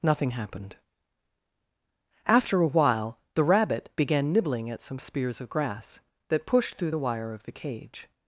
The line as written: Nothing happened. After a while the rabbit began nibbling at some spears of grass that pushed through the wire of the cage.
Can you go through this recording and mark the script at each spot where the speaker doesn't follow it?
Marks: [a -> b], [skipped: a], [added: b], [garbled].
Nothing happened. After a while the rabbit began nibbling at some spears of grass that pushed through the wire of the cage.